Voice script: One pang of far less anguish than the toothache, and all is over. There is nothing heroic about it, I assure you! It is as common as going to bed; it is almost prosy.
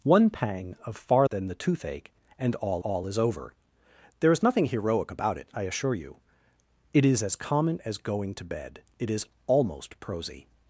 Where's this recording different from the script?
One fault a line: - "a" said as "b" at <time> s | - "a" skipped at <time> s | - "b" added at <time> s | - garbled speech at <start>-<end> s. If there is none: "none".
- "less anguish" skipped at 1.3 s
- "all" added at 2.8 s